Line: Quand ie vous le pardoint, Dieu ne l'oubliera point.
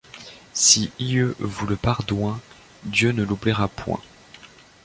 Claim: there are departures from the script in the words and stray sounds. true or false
true